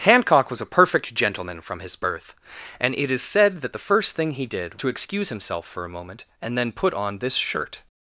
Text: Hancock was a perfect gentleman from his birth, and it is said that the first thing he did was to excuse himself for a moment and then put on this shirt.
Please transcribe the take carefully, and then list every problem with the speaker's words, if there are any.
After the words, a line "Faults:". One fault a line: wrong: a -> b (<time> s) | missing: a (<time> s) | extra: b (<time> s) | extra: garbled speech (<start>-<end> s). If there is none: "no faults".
Hancock was a perfect gentleman from his birth, and it is said that the first thing he did to excuse himself for a moment and then put on this shirt.
Faults:
missing: was (4.8 s)